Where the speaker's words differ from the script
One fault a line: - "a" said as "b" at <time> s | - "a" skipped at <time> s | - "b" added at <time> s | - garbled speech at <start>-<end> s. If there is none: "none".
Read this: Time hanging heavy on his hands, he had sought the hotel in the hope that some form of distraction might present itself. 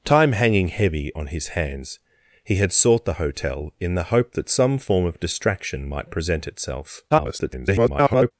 - garbled speech at 7.1-8.3 s